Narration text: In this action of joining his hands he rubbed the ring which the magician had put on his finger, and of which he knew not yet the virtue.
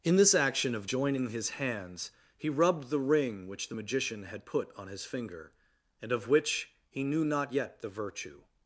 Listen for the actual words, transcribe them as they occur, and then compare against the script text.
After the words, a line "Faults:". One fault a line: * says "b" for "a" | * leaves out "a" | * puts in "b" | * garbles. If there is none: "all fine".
In this action of joining his hands he rubbed the ring which the magician had put on his finger, and of which he knew not yet the virtue.
Faults:
all fine